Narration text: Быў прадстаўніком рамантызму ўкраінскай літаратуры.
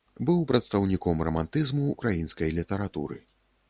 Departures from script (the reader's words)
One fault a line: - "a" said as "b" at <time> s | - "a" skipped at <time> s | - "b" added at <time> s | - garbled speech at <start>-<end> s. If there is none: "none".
none